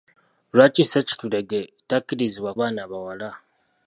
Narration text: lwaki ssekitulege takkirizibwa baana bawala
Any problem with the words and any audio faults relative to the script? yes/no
no